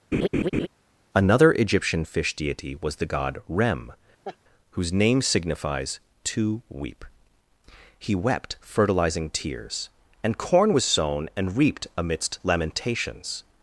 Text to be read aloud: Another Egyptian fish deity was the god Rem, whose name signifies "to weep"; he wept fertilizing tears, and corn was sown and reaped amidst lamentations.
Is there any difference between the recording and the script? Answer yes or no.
no